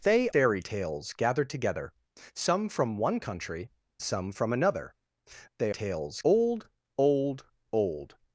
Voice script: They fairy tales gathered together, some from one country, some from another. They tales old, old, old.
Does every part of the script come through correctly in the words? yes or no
yes